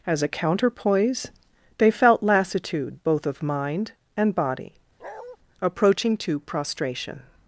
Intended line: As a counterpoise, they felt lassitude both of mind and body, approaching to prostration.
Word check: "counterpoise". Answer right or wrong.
right